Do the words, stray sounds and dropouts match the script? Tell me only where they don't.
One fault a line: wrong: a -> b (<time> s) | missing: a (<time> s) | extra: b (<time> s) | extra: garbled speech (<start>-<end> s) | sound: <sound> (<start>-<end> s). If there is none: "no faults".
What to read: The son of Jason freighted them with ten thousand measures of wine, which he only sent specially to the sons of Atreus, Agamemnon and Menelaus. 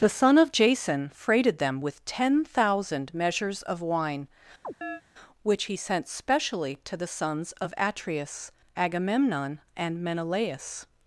sound: chirp (4.6-5.0 s)
missing: only (5.8 s)